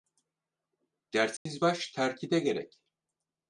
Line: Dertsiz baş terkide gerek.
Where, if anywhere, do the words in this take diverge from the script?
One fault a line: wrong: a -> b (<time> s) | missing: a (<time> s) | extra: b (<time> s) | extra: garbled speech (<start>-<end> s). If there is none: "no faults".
no faults